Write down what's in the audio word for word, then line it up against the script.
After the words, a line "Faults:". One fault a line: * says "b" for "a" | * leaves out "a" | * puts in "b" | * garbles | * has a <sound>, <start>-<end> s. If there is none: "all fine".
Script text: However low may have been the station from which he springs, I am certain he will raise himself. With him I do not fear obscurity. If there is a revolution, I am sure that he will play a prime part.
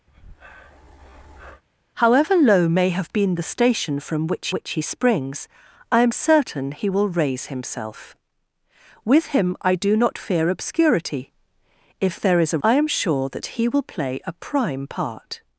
However low may have been the station from which which he springs, I am certain he will raise himself. With him I do not fear obscurity. If there is a I am sure that he will play a prime part.
Faults:
* has a breath, 0.1-1.6 s
* puts in "which"
* leaves out "revolution"